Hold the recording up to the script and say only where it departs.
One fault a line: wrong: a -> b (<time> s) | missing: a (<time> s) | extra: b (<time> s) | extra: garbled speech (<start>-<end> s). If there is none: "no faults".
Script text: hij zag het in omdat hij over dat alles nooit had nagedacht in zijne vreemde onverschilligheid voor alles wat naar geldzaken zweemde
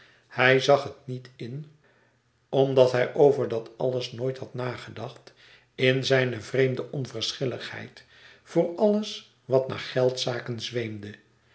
extra: niet (1.1 s)